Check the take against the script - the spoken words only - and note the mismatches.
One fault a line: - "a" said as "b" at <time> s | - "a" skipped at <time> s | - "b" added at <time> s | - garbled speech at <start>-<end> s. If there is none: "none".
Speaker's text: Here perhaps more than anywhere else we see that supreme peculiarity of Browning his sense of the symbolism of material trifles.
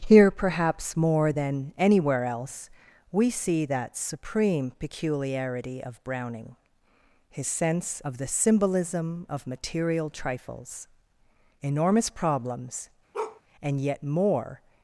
- "Enormous problems and yet more" added at 11.6 s